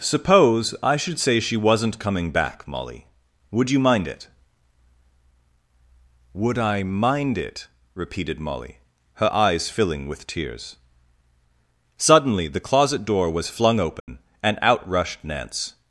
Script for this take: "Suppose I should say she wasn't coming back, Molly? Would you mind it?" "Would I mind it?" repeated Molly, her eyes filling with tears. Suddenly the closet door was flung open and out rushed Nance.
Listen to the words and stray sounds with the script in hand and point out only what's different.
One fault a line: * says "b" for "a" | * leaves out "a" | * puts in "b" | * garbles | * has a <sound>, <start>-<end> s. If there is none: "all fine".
* has a dropout, 14.0-14.1 s